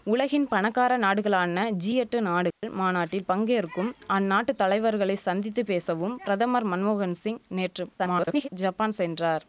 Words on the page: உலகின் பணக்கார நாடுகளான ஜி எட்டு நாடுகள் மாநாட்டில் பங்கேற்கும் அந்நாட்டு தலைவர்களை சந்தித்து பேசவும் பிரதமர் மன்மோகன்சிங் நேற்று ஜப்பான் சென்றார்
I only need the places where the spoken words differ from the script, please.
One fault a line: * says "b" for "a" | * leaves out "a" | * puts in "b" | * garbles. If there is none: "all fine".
* garbles